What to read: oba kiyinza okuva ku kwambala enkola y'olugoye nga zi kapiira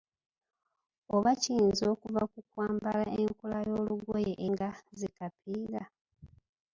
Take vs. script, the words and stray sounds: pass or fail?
pass